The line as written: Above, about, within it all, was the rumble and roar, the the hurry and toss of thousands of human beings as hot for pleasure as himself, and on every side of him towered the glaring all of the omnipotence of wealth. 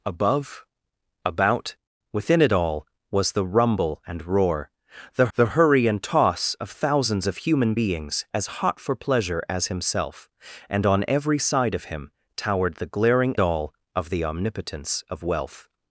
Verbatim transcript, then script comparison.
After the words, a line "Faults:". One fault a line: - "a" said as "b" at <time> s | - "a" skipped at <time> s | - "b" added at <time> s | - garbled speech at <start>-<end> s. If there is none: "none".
Above, about, within it all, was the rumble and roar, the the hurry and toss of thousands of human beings as hot for pleasure as himself, and on every side of him towered the glaring all of the omnipotence of wealth.
Faults:
none